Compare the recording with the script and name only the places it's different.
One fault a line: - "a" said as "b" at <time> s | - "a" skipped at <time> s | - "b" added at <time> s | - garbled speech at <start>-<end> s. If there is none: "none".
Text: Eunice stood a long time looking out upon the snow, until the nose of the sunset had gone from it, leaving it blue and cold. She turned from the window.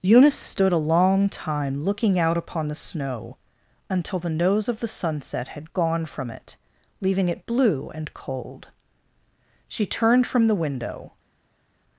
none